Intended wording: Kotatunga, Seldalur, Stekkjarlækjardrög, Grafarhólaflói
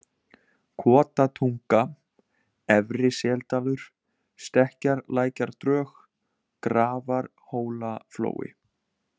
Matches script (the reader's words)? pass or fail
fail